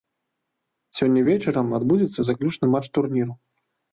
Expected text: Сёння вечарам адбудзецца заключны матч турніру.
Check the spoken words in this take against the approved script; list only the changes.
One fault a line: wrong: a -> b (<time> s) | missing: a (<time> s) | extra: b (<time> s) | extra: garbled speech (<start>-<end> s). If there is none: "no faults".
no faults